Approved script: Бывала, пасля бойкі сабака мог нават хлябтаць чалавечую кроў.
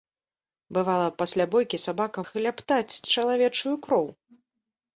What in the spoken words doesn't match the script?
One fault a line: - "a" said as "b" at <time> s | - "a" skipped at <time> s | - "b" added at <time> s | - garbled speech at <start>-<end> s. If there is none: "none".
- "мог нават" skipped at 2.2 s